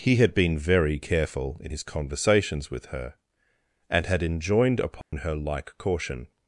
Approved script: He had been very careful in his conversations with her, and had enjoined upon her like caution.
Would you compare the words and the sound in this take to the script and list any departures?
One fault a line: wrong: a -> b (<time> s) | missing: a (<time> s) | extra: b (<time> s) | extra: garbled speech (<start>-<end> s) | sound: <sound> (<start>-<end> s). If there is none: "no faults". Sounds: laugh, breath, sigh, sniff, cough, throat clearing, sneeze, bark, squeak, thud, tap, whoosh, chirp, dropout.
sound: dropout (5.0-5.1 s)